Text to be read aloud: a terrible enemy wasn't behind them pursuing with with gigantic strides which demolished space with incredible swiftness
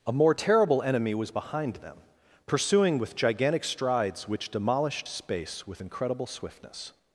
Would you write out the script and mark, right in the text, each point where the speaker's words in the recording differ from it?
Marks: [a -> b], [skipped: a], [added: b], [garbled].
a [added: more] terrible enemy [wasn't -> was] behind them pursuing with [skipped: with] gigantic strides which demolished space with incredible swiftness